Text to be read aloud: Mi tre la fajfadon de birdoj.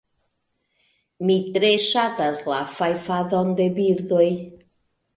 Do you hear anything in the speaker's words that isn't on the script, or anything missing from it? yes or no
yes